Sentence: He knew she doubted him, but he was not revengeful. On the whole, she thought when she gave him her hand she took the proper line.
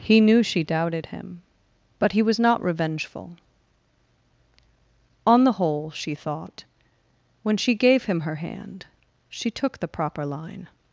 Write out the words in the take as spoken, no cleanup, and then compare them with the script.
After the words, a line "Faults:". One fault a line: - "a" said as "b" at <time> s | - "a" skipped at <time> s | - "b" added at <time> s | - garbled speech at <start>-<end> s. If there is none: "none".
He knew she doubted him, but he was not revengeful. On the whole, she thought when she gave him her hand she took the proper line.
Faults:
none